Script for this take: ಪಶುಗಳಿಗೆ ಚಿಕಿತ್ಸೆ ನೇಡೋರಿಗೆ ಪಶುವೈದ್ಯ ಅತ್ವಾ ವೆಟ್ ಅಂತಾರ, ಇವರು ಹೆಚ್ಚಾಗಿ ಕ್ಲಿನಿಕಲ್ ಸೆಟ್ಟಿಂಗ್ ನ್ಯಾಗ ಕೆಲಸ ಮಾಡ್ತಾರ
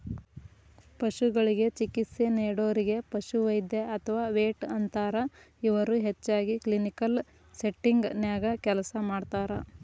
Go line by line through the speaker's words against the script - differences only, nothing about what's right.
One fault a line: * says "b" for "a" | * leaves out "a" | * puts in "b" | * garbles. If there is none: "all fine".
all fine